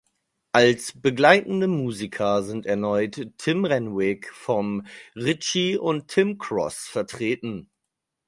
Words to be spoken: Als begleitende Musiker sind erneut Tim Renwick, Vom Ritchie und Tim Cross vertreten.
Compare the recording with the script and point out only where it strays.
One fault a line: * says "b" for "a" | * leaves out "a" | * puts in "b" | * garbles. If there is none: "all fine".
all fine